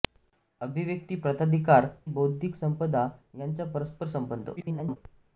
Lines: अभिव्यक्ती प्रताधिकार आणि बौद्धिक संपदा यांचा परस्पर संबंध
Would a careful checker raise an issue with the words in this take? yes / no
yes